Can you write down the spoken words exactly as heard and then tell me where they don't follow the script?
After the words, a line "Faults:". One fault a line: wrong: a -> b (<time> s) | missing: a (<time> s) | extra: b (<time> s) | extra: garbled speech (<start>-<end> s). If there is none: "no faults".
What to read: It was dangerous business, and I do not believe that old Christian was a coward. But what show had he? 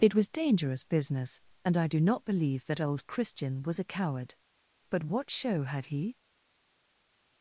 It was dangerous business, and I do not believe that old Christian was a coward. But what show had he?
Faults:
no faults